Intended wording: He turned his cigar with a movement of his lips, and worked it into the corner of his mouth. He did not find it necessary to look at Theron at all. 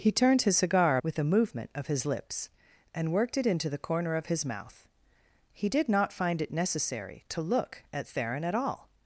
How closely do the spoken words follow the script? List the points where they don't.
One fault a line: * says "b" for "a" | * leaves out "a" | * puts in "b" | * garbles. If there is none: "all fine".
all fine